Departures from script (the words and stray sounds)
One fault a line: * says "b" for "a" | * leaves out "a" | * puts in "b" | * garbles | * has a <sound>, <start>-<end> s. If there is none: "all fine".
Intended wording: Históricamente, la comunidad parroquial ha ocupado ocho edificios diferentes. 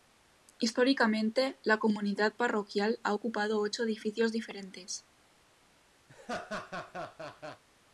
* has a laugh, 6.1-7.6 s